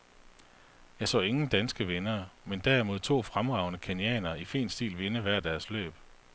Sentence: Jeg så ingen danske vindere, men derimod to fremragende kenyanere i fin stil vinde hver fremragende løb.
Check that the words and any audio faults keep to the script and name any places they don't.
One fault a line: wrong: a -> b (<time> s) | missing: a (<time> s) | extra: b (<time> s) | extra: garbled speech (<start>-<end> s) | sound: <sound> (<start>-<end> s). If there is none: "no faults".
wrong: fremragende -> deres (5.4 s)